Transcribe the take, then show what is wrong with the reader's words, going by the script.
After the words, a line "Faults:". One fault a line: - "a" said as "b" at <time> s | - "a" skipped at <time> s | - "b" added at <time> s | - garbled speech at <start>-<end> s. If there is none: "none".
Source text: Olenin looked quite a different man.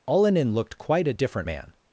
Olenin looked quite a different man.
Faults:
none